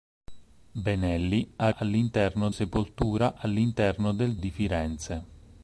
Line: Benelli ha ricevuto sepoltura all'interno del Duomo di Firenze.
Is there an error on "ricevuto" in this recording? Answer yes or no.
yes